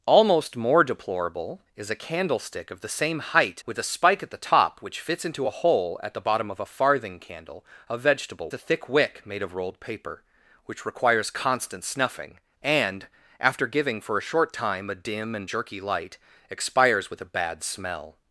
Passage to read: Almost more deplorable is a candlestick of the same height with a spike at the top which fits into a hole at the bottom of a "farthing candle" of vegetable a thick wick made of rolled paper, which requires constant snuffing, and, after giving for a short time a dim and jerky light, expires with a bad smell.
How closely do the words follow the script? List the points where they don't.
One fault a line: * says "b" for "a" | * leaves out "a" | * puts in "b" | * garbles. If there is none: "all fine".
all fine